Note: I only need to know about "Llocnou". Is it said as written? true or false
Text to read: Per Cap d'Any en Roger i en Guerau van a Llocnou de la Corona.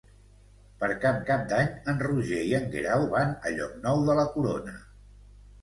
true